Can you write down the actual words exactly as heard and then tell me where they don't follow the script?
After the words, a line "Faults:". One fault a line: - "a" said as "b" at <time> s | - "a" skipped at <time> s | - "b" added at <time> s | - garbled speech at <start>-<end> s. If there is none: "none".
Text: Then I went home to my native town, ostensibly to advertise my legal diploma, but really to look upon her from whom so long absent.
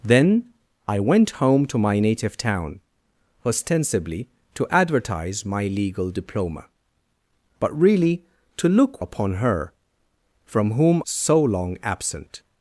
Then I went home to my native town, ostensibly to advertise my legal diploma, but really to look upon her from whom so long absent.
Faults:
none